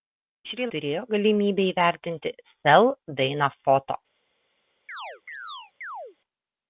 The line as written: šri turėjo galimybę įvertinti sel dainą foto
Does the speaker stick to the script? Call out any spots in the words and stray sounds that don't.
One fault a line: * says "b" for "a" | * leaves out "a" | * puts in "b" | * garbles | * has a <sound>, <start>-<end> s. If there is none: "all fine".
* has a chirp, 4.9-6.2 s